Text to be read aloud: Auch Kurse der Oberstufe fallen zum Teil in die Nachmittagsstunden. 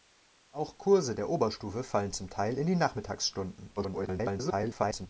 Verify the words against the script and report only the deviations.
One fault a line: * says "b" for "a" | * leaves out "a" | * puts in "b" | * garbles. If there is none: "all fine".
* garbles